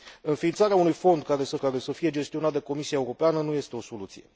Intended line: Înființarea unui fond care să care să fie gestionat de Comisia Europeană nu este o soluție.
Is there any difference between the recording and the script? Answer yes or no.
no